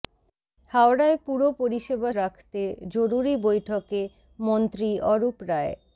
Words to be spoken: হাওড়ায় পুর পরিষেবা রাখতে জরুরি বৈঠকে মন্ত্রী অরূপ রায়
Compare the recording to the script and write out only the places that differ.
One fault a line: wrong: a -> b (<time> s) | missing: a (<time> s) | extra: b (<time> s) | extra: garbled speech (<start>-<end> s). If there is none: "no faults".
no faults